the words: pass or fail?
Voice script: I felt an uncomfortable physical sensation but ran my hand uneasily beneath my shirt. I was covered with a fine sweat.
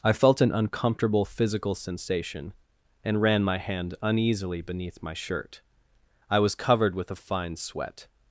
fail